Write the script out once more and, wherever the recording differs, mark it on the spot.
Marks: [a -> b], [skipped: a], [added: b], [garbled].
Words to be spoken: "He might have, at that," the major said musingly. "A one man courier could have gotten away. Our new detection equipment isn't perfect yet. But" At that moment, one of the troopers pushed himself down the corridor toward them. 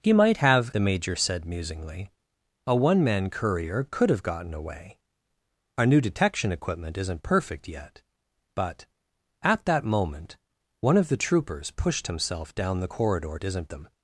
"He might have, [skipped: at that,"] the major said musingly. "A one man courier could have gotten away. Our new detection equipment isn't perfect yet. But" At that moment, one of the troopers pushed himself down the corridor [toward -> isn't] them.